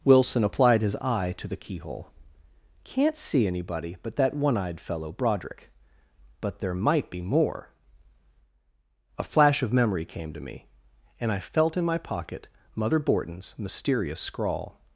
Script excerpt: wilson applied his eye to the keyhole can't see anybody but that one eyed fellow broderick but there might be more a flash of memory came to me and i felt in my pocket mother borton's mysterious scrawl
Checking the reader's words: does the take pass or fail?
pass